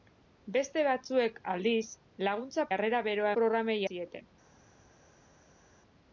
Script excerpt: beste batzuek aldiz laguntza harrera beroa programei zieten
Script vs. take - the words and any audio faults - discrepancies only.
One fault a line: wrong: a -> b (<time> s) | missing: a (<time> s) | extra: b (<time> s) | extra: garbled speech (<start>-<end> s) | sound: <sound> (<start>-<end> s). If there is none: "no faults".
no faults